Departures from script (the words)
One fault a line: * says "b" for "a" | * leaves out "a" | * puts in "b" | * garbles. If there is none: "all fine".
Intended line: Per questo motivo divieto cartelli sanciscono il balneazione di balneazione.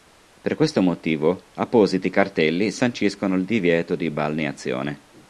* says "appositi" for "divieto"
* says "divieto" for "balneazione"